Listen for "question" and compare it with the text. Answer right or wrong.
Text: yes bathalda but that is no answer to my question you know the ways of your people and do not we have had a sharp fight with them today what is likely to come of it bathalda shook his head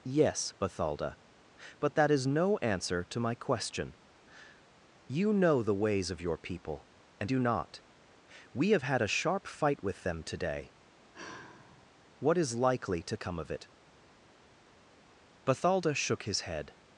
right